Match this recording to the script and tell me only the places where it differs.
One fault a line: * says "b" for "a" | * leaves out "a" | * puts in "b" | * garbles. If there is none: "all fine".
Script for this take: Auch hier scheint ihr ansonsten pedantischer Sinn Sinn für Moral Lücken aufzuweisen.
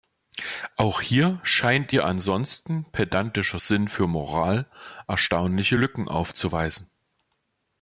* leaves out "Sinn"
* puts in "erstaunliche"